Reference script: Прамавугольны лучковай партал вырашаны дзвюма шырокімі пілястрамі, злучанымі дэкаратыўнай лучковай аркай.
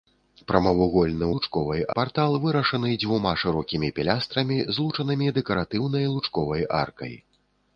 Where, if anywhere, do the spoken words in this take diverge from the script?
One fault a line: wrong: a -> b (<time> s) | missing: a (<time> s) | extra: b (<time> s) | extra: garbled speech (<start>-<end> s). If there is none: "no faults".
no faults